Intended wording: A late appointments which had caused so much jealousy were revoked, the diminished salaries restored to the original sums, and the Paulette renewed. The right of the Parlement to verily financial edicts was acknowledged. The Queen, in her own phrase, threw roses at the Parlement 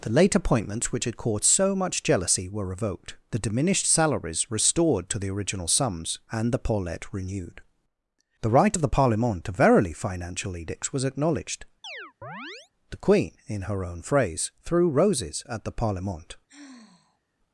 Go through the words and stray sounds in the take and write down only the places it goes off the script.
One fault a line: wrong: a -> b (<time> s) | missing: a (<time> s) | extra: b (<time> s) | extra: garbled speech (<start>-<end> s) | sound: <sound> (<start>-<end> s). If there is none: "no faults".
wrong: A -> The (0.0 s)
sound: chirp (11.8-12.7 s)
sound: sigh (16.5-17.2 s)